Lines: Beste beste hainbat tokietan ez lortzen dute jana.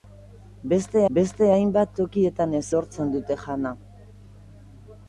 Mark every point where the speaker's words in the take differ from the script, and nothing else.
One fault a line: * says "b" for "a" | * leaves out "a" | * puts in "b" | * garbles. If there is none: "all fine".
all fine